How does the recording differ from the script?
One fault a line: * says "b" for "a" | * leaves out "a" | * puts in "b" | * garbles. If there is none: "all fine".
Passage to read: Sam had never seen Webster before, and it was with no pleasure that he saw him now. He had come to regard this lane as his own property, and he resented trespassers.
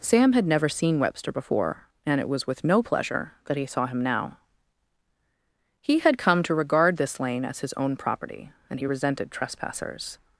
all fine